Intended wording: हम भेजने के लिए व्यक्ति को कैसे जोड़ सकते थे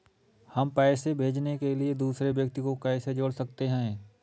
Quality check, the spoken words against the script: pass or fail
fail